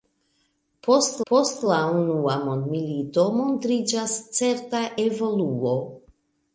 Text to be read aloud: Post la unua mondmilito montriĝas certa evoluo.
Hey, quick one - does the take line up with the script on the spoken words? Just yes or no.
no